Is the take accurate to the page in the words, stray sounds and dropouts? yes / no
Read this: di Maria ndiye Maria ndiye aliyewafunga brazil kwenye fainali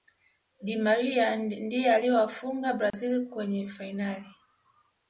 no